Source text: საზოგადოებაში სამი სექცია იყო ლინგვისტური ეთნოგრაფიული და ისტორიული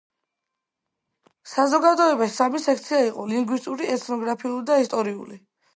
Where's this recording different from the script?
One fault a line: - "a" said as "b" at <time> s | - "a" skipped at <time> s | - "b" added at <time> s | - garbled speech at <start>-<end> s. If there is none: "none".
none